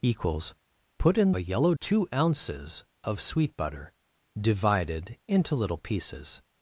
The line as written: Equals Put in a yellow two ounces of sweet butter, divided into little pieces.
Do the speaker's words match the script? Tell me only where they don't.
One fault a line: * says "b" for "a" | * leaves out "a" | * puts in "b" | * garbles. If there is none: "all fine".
all fine